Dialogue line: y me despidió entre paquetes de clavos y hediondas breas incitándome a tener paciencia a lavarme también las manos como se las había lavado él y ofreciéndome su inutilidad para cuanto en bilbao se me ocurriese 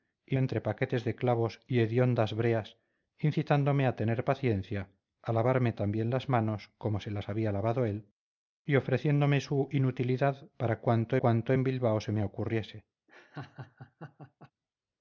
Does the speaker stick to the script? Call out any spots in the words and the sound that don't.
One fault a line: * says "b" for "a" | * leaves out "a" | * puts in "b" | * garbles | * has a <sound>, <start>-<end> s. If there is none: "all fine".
* leaves out "me despidió"
* puts in "cuanto"
* has a laugh, 13.1-14.5 s